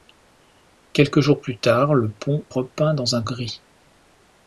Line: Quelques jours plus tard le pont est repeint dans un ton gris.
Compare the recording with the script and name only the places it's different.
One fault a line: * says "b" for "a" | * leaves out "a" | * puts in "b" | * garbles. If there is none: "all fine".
* leaves out "est"
* leaves out "ton"